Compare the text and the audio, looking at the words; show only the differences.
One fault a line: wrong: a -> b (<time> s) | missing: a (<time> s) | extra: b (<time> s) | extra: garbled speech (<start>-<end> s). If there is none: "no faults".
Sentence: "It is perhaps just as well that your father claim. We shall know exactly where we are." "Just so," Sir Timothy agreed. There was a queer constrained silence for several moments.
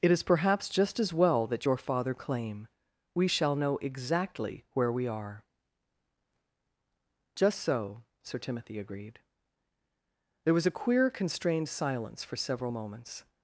no faults